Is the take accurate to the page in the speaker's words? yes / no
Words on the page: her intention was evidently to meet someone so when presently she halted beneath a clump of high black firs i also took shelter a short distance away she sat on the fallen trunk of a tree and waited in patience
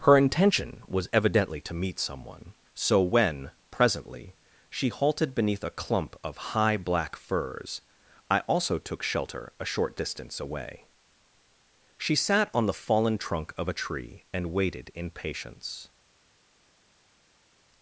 yes